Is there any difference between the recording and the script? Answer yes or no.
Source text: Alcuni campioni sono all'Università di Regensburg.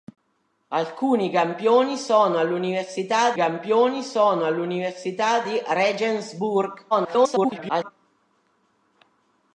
yes